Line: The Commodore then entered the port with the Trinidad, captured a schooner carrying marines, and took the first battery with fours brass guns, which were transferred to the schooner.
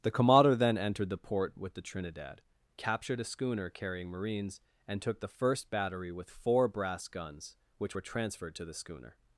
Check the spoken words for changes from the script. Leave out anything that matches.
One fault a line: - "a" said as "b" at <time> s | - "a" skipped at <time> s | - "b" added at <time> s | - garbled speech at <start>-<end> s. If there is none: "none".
- "fours" said as "four" at 6.3 s